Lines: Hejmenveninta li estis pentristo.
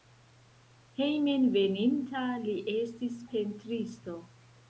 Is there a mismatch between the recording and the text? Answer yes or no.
no